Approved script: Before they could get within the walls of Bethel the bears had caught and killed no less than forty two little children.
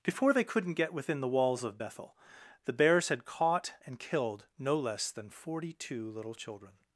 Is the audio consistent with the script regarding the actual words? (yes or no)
no